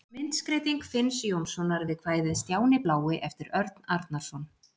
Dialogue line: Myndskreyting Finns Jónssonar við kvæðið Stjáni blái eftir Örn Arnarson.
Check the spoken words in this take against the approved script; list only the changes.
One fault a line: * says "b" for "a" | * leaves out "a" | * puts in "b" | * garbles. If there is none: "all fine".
all fine